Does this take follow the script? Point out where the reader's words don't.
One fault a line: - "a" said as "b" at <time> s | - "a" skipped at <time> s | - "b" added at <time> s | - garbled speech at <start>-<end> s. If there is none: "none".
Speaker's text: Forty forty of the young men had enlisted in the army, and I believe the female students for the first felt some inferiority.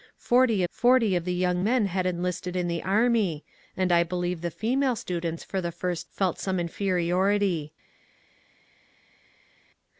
none